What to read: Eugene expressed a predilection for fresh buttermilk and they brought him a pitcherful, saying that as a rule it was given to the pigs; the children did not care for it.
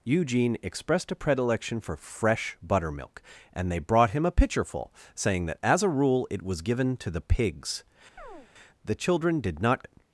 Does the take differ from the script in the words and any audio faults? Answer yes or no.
yes